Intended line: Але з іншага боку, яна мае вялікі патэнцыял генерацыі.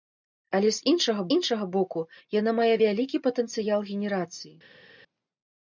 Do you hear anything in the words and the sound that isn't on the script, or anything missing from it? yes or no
yes